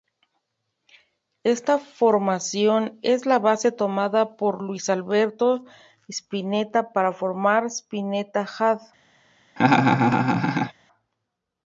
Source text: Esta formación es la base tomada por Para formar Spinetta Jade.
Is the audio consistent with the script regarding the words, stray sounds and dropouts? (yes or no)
no